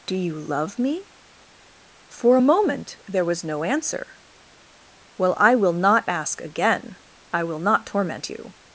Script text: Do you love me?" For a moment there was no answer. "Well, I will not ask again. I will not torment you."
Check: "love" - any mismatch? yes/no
no